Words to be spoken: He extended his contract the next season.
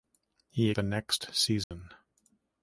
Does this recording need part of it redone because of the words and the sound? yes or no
yes